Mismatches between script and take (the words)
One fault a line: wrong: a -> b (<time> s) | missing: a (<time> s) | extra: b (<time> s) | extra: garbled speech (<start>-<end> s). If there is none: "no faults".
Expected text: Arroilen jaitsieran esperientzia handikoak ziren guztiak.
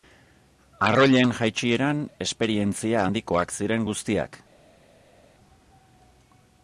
no faults